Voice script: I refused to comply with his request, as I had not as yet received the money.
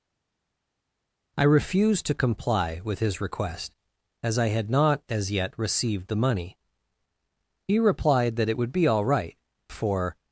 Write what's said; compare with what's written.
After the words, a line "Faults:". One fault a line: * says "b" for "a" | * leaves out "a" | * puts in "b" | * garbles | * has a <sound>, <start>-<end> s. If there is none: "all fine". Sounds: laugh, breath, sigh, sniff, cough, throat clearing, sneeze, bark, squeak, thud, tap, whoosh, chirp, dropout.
I refused to comply with his request, as I had not as yet received the money. He replied that it would be all right, for
Faults:
* puts in "He replied that it would be all right for"